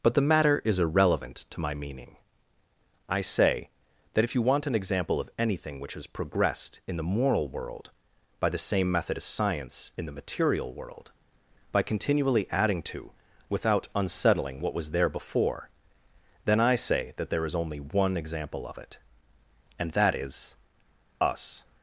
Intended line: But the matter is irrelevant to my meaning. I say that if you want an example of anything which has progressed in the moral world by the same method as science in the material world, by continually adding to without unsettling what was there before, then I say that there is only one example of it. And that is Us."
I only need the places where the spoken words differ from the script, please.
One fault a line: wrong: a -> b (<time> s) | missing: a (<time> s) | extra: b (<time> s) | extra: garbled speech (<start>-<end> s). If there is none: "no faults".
no faults